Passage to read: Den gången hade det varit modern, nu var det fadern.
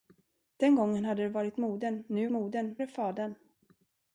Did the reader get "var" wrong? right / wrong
wrong